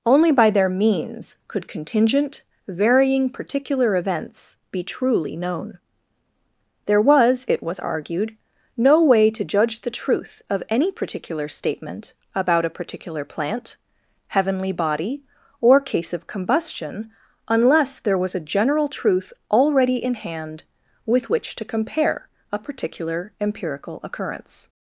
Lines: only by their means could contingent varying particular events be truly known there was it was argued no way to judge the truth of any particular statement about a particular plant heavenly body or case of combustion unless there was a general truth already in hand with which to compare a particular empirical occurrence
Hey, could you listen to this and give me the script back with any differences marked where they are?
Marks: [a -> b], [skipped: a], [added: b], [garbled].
only by their means could contingent varying particular events be truly known there was it was argued no way to judge the truth of any particular statement about a particular plant heavenly body or case of combustion unless there was a general truth already in hand with which to compare a particular empirical occurrence